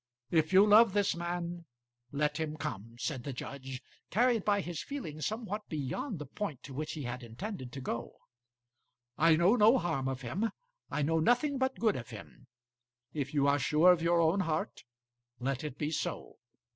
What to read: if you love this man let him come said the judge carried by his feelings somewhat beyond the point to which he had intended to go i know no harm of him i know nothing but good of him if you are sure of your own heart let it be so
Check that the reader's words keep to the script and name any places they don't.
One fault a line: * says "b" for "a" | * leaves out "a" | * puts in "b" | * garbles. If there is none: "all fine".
all fine